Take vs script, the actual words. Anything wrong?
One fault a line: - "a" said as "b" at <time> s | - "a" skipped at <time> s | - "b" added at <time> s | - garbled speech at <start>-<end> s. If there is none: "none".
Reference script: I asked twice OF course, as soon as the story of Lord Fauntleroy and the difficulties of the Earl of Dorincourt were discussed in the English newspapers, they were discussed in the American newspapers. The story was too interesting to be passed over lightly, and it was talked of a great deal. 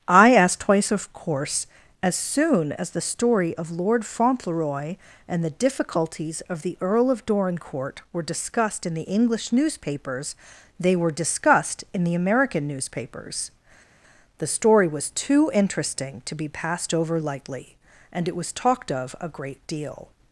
none